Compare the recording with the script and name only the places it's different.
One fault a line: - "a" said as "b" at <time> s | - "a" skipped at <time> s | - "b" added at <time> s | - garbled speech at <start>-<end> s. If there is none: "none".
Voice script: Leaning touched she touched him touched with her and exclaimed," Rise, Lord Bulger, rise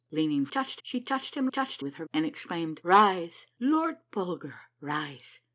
none